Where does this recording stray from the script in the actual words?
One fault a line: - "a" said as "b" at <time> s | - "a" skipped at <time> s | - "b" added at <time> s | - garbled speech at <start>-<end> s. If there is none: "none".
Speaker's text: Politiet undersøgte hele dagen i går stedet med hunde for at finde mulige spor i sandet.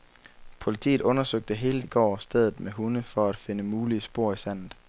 - "dagen" skipped at 1.8 s